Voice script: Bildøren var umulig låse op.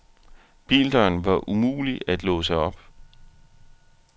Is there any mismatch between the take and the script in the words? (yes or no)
yes